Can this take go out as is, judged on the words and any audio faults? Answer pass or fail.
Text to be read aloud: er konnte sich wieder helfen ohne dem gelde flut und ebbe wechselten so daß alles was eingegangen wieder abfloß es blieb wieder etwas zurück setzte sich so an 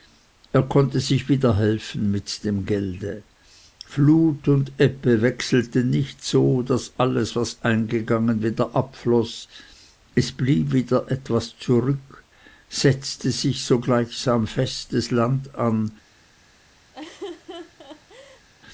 fail